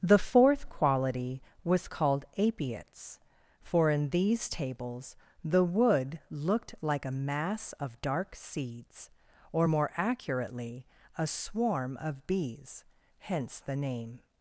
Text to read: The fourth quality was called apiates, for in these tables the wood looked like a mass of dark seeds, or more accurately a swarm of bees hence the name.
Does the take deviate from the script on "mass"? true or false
false